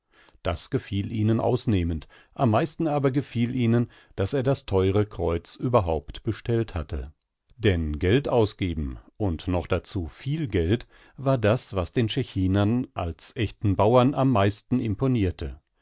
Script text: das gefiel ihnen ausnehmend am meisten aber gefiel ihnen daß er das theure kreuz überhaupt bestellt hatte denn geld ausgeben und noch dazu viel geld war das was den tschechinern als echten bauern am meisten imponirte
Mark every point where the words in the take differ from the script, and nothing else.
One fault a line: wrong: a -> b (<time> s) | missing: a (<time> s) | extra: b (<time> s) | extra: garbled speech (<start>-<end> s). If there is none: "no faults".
no faults